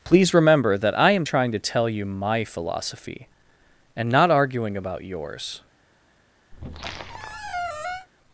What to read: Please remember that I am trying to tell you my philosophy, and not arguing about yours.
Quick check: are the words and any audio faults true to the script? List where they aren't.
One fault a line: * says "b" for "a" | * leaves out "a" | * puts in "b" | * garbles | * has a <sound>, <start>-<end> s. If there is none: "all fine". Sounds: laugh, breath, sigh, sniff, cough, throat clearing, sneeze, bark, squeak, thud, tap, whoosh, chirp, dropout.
* has a squeak, 6.5-8.1 s